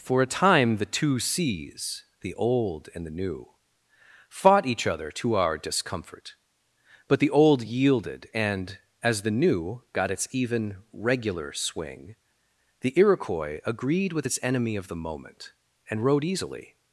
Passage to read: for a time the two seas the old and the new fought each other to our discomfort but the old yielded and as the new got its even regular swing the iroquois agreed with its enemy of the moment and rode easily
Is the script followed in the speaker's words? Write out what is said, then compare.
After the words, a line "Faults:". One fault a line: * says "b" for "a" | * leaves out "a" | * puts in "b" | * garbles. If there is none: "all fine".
for a time the two seas the old and the new fought each other to our discomfort but the old yielded and as the new got its even regular swing the iroquois agreed with its enemy of the moment and rode easily
Faults:
all fine